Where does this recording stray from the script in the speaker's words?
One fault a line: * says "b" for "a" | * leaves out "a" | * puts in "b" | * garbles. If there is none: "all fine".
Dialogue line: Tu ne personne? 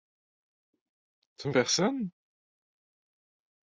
all fine